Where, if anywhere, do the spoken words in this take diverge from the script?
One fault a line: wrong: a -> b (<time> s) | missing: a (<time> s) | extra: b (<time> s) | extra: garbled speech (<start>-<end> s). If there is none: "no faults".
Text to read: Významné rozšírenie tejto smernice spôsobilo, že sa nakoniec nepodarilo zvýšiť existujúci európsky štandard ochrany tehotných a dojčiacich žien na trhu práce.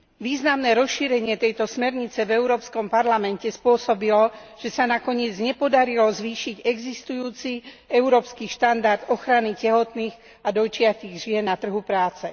extra: v Európskom parlamente (2.2 s)